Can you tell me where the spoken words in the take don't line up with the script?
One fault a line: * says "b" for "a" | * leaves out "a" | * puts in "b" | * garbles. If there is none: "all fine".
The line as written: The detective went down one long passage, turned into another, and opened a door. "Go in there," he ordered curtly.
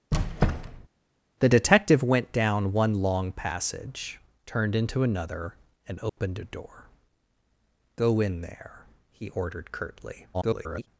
* garbles